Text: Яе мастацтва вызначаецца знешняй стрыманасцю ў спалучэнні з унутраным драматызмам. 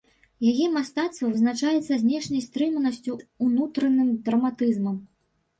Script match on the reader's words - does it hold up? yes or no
no